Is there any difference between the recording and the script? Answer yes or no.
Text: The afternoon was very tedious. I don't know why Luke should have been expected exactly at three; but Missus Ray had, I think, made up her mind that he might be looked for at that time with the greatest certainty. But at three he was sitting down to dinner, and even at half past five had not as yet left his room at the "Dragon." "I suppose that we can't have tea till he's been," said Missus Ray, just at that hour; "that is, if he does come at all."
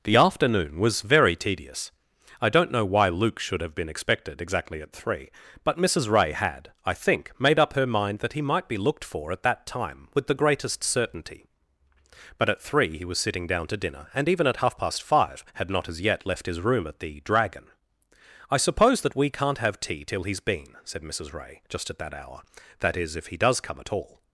no